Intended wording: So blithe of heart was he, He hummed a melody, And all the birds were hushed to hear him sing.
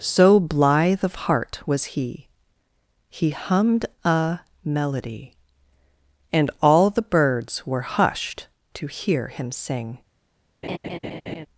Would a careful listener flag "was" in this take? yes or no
no